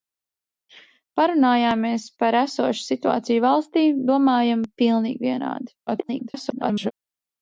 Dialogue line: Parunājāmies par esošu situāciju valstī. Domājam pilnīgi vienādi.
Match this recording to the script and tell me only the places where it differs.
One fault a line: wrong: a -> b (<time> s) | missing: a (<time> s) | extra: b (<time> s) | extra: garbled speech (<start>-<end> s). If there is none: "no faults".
extra: garbled speech (5.9-6.9 s)